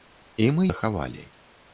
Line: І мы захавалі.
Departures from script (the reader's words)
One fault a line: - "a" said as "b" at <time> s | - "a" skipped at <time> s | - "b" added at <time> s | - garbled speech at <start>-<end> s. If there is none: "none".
none